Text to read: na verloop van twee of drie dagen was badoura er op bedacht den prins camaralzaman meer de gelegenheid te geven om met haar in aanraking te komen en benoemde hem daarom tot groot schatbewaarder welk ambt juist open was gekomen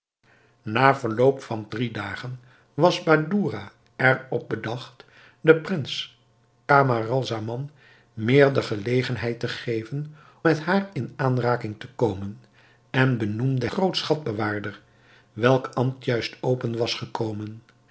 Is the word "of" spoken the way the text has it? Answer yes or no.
no